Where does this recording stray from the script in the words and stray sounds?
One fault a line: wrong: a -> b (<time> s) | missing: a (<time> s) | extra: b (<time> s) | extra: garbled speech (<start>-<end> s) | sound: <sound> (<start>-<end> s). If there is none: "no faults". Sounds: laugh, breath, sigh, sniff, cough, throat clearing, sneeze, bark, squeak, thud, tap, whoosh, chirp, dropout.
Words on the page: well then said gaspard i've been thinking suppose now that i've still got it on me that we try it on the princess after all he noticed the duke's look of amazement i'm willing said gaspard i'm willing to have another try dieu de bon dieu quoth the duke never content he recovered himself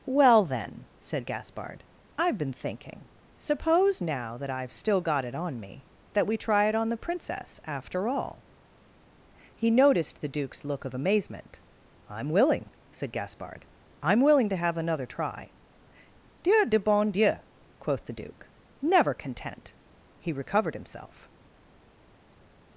no faults